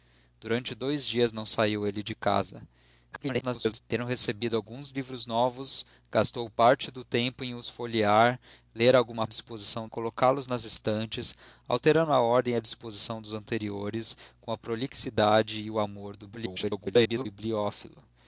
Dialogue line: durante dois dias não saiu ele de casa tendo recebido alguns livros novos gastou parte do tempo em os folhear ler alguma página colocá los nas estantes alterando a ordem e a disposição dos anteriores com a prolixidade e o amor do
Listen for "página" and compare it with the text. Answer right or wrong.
wrong